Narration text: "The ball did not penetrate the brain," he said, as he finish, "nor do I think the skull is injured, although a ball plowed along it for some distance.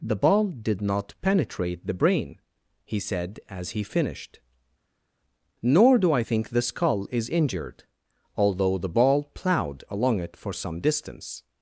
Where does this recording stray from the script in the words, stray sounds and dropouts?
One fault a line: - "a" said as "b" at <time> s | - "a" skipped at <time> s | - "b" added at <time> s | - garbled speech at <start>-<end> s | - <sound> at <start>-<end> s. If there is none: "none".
- "finish" said as "finished" at 3.8 s
- "a" said as "the" at 8.8 s